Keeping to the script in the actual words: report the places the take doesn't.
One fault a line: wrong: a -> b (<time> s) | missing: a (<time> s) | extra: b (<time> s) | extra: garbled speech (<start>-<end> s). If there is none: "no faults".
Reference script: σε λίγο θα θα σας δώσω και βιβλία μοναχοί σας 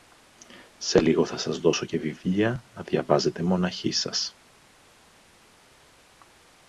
missing: θα (1.4 s)
extra: να διαβάζετε (2.7 s)